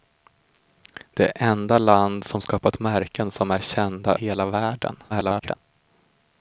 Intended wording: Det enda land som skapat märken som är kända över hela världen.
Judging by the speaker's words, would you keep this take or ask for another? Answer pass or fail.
fail